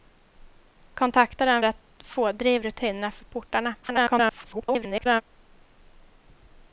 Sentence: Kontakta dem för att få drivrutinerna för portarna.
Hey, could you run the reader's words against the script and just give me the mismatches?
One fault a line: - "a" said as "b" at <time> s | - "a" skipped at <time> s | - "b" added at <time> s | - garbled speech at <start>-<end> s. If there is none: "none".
- "för" skipped at 1.6 s
- garbled speech at 3.8-5.2 s